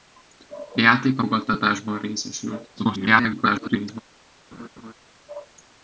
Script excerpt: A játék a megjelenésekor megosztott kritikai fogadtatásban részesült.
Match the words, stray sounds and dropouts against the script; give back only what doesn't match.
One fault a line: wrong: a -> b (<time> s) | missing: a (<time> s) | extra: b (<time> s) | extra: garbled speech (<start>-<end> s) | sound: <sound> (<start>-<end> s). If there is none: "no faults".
missing: megjelenésekor megosztott kritikai (1.2 s)
extra: garbled speech (2.8-4.0 s)
sound: laugh (4.5-4.9 s)